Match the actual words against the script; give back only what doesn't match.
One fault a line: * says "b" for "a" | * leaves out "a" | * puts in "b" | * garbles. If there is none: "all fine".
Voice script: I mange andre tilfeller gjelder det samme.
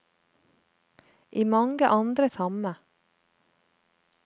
* leaves out "tilfeller gjelder det"